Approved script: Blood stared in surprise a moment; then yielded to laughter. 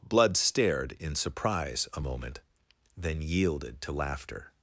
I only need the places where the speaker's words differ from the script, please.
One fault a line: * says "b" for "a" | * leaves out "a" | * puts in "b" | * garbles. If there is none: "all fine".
all fine